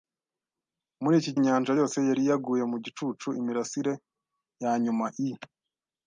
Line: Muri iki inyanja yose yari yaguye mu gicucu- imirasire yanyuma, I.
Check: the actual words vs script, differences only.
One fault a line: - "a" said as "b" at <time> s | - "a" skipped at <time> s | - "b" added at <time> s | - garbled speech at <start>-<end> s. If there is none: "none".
none